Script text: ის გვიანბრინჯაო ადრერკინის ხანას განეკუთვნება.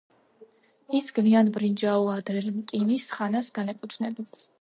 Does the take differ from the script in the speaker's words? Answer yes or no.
no